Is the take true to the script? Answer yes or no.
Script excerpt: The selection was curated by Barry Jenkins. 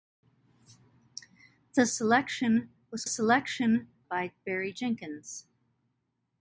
no